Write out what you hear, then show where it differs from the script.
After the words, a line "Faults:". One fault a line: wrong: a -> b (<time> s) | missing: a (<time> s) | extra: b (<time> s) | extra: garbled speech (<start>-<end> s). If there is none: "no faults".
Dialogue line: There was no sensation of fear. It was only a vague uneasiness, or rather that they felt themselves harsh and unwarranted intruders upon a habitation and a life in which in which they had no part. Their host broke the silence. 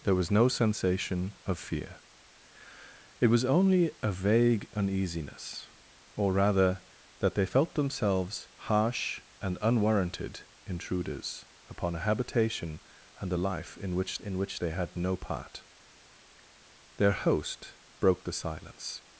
There was no sensation of fear. It was only a vague uneasiness, or rather that they felt themselves harsh and unwarranted intruders upon a habitation and a life in which in which they had no part. Their host broke the silence.
Faults:
no faults